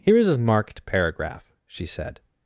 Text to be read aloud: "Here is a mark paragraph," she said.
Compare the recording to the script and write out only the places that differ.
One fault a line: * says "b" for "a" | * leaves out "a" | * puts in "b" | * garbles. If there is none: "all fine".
* says "marked" for "mark"